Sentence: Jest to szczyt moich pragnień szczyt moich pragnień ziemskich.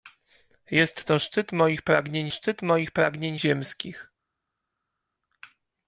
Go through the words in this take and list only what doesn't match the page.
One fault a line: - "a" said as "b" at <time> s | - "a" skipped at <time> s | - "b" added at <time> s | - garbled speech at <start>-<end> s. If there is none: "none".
none